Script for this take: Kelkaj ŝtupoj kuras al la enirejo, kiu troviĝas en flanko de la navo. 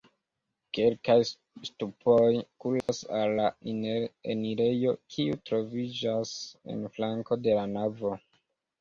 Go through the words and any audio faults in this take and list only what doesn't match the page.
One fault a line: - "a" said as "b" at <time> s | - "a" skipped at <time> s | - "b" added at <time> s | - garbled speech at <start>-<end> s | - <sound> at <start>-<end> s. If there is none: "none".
- dropout at 2.8-2.9 s